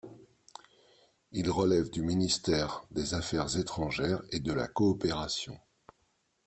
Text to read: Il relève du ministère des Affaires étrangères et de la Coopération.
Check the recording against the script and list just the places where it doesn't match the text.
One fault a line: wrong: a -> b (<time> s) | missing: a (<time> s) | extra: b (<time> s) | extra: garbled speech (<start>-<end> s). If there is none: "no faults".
no faults